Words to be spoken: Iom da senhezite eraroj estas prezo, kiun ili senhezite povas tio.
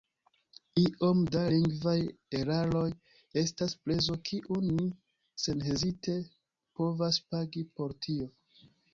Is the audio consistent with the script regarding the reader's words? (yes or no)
no